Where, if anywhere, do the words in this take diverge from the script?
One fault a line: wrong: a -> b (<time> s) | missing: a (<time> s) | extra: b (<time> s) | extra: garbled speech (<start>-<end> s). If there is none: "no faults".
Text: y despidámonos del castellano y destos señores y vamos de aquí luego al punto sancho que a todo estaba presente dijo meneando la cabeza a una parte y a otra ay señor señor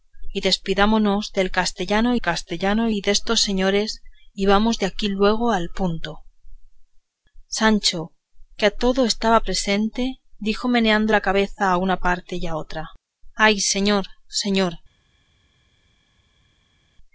extra: castellano (2.2 s)